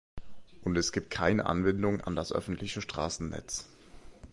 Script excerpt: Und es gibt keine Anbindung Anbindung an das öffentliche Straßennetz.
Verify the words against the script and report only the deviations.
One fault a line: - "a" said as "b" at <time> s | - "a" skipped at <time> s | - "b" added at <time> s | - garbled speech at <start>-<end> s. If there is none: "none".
- "Anbindung" skipped at 2.0 s